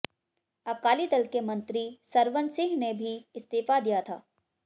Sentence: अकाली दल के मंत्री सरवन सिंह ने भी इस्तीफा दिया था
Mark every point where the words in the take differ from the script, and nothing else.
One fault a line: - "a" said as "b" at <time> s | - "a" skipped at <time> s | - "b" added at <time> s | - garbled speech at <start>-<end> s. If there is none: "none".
none